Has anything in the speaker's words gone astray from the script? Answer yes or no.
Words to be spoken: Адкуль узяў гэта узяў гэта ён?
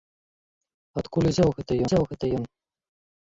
no